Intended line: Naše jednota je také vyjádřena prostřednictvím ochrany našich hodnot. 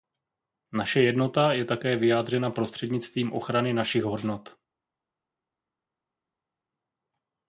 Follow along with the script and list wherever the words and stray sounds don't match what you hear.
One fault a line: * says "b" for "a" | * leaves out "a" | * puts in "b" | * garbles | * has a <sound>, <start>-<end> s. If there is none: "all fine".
all fine